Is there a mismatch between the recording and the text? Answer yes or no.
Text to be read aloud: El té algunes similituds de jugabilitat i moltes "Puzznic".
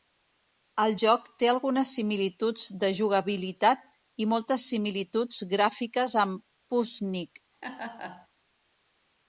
yes